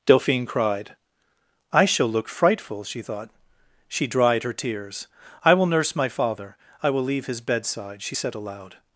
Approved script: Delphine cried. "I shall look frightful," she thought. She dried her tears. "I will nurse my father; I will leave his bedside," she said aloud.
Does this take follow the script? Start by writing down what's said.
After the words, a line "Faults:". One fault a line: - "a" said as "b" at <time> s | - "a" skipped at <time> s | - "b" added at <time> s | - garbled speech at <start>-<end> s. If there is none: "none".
Delphine cried. "I shall look frightful," she thought. She dried her tears. "I will nurse my father; I will leave his bedside," she said aloud.
Faults:
none